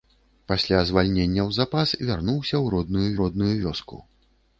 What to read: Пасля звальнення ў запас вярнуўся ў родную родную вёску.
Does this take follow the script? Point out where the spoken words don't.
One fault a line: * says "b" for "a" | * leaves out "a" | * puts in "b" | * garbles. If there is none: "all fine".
all fine